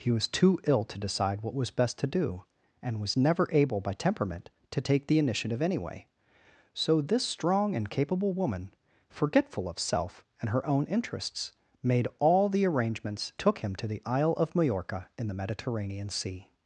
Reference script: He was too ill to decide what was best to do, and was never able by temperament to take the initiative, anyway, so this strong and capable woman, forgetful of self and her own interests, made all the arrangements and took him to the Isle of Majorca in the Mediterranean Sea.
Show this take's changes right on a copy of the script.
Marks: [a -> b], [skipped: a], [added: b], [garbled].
He was too ill to decide what was best to do, and was never able by temperament to take the initiative, anyway, so this strong and capable woman, forgetful of self and her own interests, made all the arrangements [skipped: and] took him to the Isle of Majorca in the Mediterranean Sea.